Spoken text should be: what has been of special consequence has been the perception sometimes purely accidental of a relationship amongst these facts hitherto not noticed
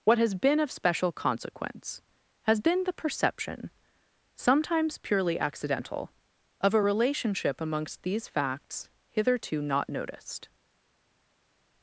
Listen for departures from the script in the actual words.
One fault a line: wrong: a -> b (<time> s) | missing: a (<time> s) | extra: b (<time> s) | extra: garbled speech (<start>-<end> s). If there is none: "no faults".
no faults